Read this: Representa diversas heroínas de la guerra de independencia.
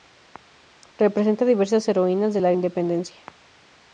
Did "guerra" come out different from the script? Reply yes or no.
yes